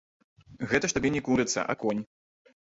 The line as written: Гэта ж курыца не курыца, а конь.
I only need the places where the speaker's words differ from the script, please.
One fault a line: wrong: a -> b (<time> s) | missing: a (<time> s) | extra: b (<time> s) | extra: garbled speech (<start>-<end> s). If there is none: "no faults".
wrong: курыца -> табе (1.0 s)